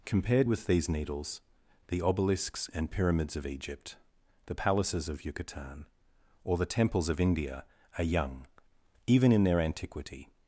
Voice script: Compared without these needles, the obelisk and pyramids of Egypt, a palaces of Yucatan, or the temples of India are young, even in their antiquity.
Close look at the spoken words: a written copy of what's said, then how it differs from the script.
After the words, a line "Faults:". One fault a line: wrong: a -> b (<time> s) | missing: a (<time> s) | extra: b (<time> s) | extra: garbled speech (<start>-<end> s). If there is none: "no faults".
Compared with these needles, the obelisks and pyramids of Egypt, the palaces of Yucatan, or the temples of India are young, even in their antiquity.
Faults:
wrong: without -> with (0.5 s)
wrong: obelisk -> obelisks (2.0 s)
wrong: a -> the (4.4 s)